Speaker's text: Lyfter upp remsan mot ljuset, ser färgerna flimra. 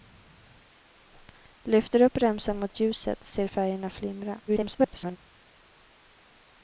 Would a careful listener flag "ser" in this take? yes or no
no